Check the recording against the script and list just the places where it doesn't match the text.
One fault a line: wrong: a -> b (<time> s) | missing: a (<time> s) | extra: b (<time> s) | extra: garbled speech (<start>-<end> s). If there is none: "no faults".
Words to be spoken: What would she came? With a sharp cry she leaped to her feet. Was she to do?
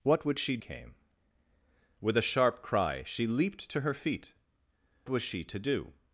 no faults